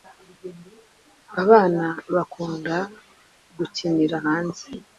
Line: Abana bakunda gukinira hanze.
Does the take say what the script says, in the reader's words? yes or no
yes